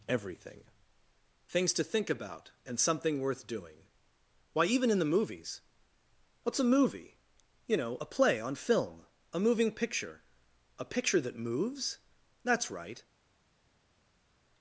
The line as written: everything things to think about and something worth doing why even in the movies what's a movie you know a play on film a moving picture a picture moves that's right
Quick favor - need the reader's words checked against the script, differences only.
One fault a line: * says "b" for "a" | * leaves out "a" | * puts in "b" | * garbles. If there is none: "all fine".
* puts in "that"